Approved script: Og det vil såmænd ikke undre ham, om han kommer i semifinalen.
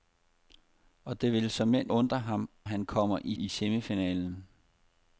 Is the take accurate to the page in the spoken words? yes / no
no